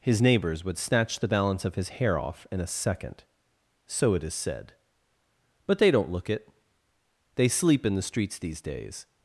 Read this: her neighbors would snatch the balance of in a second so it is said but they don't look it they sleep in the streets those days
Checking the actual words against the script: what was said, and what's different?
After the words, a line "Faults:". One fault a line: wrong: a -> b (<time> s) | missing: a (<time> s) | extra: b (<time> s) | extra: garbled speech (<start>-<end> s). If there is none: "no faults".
his neighbors would snatch the balance of his hair off in a second so it is said but they don't look it they sleep in the streets these days
Faults:
wrong: her -> his (0.0 s)
extra: his hair off (1.8 s)
wrong: those -> these (8.4 s)